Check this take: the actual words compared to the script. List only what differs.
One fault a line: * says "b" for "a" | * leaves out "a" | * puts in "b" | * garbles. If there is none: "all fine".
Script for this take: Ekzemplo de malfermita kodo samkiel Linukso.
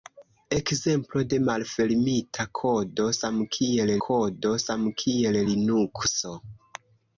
* puts in "kodo samkiel"